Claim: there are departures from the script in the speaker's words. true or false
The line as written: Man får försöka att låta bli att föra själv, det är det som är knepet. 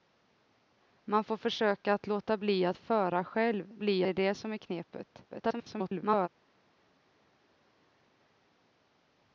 true